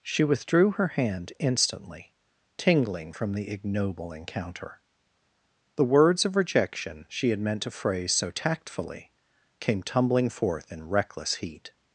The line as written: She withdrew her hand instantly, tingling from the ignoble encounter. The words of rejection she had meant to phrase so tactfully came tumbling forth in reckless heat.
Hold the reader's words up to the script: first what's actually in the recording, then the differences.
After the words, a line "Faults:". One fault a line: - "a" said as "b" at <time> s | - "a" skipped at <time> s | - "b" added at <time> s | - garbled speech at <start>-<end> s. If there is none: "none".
She withdrew her hand instantly, tingling from the ignoble encounter. The words of rejection she had meant to phrase so tactfully came tumbling forth in reckless heat.
Faults:
none